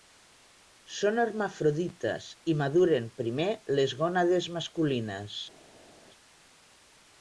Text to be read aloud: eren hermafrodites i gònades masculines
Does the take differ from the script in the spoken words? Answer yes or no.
yes